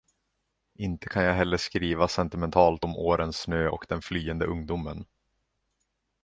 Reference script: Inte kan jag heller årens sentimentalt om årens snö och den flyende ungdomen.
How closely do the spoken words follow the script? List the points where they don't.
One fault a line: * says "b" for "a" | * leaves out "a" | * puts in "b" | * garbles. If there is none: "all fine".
* says "skriva" for "årens"